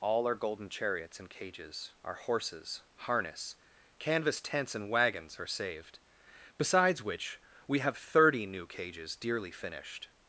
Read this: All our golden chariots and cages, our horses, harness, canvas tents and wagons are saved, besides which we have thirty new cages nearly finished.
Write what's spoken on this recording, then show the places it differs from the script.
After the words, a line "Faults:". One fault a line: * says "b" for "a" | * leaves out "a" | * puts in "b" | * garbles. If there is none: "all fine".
All our golden chariots and cages, our horses, harness, canvas tents and wagons are saved, besides which we have thirty new cages dearly finished.
Faults:
* says "dearly" for "nearly"